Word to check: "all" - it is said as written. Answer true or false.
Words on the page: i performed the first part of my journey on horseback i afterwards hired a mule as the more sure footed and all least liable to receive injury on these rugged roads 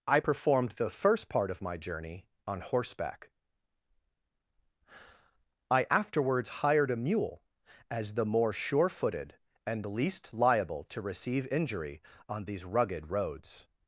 false